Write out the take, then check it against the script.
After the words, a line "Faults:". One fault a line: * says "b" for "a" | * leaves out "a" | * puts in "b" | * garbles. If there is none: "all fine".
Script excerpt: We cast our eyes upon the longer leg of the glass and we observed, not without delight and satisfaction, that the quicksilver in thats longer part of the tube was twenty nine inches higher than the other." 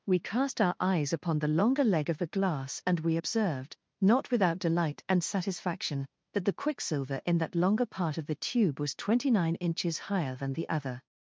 We cast our eyes upon the longer leg of the glass and we observed, not without delight and satisfaction, that the quicksilver in that longer part of the tube was twenty nine inches higher than the other."
Faults:
* says "that" for "thats"